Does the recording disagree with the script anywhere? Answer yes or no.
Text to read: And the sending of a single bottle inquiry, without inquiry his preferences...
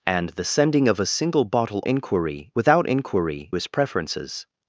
no